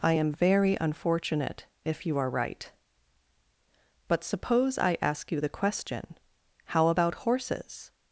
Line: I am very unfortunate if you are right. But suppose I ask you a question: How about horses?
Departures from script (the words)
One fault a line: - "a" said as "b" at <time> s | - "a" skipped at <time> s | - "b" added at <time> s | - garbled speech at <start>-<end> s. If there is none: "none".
- "a" said as "the" at 5.4 s